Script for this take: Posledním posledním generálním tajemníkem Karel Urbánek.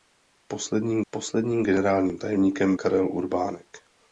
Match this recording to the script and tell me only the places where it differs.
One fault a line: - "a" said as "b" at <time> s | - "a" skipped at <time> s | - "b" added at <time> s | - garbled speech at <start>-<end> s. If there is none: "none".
none